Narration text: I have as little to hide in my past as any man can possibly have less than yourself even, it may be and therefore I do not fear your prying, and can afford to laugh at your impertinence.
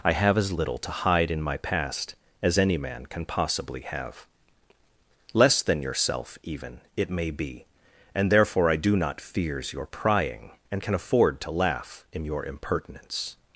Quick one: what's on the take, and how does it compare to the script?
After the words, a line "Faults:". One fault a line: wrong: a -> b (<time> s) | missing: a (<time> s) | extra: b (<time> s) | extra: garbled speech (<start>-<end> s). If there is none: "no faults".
I have as little to hide in my past as any man can possibly have less than yourself even, it may be and therefore I do not fears your prying, and can afford to laugh in your impertinence.
Faults:
wrong: fear -> fears (9.2 s)
wrong: at -> in (12.1 s)